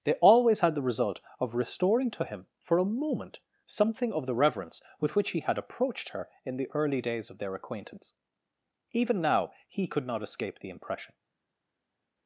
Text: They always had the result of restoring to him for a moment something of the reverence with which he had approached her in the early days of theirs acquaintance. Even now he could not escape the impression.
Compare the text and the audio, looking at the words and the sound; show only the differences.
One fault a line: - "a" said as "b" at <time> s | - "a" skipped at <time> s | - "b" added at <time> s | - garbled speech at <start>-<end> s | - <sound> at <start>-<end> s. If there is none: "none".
- "theirs" said as "their" at 7.4 s